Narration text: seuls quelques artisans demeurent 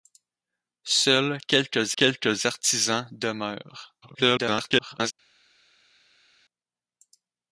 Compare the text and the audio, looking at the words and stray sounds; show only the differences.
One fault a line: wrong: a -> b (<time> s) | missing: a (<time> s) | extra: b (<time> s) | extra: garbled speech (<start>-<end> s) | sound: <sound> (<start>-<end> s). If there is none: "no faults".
extra: quelques (2.0 s)
extra: garbled speech (4.0-5.1 s)